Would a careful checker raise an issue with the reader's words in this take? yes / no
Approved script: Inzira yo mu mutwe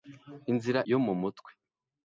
no